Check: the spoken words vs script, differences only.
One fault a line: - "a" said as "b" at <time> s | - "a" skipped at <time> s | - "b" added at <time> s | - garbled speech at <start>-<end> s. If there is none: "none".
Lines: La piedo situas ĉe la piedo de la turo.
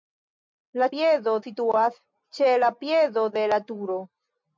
none